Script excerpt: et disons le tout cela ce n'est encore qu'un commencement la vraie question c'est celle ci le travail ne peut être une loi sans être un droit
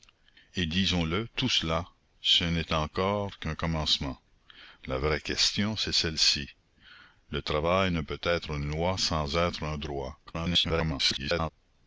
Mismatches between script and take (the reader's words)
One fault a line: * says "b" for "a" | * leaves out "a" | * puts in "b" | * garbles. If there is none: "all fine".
* garbles